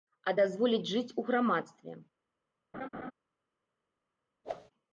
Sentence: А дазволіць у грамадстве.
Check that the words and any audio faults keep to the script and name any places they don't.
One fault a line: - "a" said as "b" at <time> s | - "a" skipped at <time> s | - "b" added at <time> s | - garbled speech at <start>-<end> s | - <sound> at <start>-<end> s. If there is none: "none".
- "жыць" added at 0.9 s
- laugh at 2.7-3.1 s
- whoosh at 4.4-4.7 s